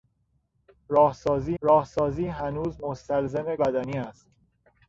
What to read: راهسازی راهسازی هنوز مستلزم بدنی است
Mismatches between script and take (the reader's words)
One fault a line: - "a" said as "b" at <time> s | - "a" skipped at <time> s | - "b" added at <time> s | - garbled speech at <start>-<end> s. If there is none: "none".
none